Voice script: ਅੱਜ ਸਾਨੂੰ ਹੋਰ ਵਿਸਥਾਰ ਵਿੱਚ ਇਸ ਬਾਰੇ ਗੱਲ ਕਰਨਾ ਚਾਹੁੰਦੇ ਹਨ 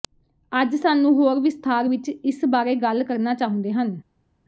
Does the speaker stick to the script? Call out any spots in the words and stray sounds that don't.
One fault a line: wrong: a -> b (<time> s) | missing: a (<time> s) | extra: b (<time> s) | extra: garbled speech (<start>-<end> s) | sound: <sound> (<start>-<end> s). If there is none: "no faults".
no faults